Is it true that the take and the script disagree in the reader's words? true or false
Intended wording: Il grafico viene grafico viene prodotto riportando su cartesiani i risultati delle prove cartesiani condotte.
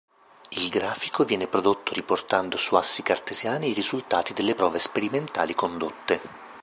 true